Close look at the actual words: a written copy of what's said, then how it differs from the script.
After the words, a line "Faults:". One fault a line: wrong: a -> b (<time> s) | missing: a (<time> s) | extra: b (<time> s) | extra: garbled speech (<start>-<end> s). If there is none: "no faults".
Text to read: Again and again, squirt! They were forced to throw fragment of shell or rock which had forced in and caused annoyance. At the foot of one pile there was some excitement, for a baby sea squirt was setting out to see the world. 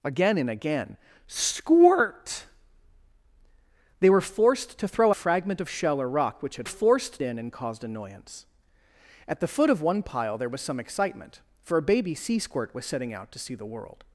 Again and again, squirt! They were forced to throw fragment of shell or rock which had forced in and caused annoyance. At the foot of one pile there was some excitement, for a baby sea squirt was setting out to see the world.
Faults:
no faults